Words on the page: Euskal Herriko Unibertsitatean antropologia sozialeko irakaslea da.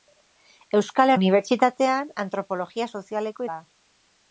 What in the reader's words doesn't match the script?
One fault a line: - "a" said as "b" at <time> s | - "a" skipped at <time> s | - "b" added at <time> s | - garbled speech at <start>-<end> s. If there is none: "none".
- "Herriko" skipped at 1.1 s
- "irakaslea" skipped at 3.5 s